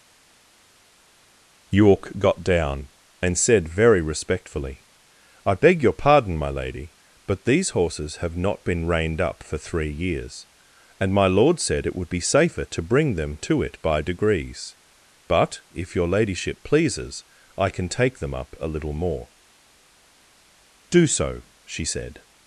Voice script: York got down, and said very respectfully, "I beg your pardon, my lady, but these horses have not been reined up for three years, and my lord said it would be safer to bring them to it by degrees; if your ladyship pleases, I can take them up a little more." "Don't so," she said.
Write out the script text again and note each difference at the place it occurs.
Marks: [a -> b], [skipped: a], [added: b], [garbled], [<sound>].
York got down, and said very respectfully, "I beg your pardon, my lady, but these horses have not been reined up for three years, and my lord said it would be safer to bring them to it by degrees; [added: but] if your ladyship pleases, I can take them up a little more." ["Don't -> Do] so," she said.